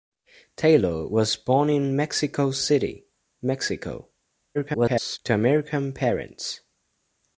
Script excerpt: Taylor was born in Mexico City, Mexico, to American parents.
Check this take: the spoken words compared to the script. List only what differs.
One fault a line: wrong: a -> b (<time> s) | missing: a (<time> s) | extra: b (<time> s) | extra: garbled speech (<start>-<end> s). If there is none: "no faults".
extra: garbled speech (4.5-5.2 s)